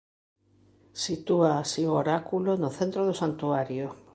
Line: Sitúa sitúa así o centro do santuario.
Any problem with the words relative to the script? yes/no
yes